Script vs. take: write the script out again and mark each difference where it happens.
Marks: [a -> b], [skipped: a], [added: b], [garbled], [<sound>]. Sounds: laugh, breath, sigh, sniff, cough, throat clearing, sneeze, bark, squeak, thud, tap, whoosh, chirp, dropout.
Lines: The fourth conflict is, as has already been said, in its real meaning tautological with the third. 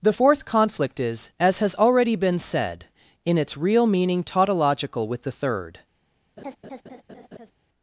The fourth conflict is, as has already been said, in its real meaning tautological with the third. [laugh]